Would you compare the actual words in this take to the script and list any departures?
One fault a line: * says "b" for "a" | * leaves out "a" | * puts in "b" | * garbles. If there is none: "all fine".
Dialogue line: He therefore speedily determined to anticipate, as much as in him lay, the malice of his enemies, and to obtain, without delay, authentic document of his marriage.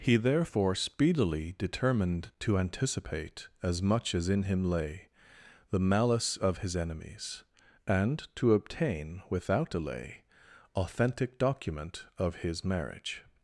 all fine